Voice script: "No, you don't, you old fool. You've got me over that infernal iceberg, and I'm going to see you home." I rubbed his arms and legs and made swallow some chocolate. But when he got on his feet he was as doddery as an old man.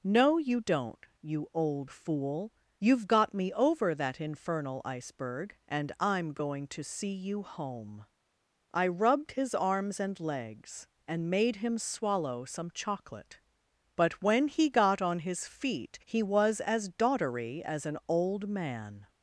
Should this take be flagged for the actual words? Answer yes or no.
yes